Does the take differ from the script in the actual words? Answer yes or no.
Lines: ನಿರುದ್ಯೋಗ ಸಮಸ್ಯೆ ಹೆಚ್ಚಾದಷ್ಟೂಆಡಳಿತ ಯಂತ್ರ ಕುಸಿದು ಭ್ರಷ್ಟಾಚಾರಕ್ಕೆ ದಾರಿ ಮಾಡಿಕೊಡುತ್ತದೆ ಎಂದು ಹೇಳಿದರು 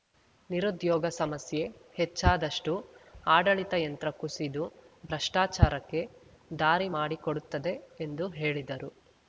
no